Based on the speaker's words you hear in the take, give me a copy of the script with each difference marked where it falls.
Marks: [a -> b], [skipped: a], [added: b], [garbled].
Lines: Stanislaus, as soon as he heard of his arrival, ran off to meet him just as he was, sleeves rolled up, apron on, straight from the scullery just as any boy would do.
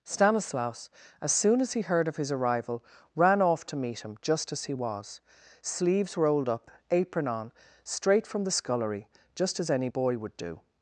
Stanislaus, as soon as he heard of his arrival, ran off to meet him just as he was, sleeves rolled up, apron on, straight from the scullery just as any boy would do.